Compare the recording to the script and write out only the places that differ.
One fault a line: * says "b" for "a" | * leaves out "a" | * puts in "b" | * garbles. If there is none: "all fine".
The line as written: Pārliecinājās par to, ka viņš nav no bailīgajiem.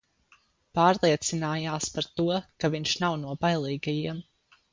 all fine